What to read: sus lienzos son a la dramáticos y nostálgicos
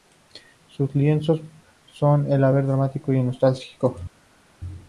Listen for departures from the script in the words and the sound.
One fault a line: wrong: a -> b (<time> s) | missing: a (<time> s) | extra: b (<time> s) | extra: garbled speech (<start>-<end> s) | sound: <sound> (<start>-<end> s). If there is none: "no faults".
extra: vez (2.5 s)